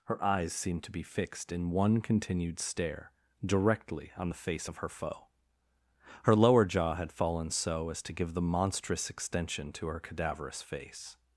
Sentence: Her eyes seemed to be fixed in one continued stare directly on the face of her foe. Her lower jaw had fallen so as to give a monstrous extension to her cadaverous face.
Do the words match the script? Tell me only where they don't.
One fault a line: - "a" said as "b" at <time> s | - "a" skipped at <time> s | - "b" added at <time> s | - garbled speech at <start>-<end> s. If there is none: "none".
- "a" said as "the" at 8.3 s